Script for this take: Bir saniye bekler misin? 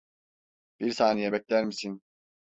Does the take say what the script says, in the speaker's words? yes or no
yes